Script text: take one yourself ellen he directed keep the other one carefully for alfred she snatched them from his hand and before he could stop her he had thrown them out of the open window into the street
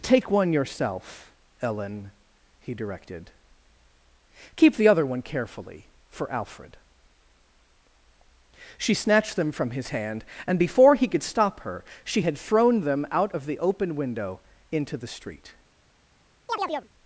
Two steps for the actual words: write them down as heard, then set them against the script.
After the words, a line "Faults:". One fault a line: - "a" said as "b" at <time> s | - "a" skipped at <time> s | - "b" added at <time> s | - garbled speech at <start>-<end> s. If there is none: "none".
take one yourself ellen he directed keep the other one carefully for alfred she snatched them from his hand and before he could stop her she had thrown them out of the open window into the street
Faults:
- "he" said as "she" at 12.0 s